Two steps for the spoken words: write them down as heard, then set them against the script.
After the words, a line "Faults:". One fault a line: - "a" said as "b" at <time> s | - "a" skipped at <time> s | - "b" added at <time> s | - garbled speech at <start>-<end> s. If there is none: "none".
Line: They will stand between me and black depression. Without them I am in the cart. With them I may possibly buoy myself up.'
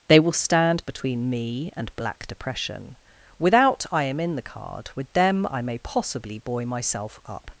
They will stand between me and black depression. Without I am in the card. With them I may possibly buoy myself up.'
Faults:
- "them" skipped at 3.9 s
- "cart" said as "card" at 4.4 s